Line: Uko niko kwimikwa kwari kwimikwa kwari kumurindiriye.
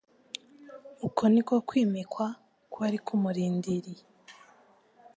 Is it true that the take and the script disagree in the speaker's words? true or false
true